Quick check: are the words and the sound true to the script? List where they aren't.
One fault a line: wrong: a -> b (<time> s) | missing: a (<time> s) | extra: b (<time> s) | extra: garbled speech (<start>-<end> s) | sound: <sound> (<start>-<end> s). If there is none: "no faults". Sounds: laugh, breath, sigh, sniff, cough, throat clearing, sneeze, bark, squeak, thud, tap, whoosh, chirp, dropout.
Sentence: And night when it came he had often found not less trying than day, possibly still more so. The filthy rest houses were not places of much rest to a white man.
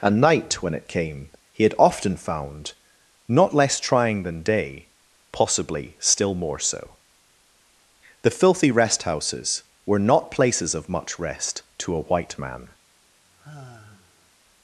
sound: sigh (13.2-14.3 s)